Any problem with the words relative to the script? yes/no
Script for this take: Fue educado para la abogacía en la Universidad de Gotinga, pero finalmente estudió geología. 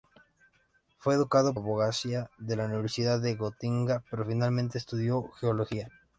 yes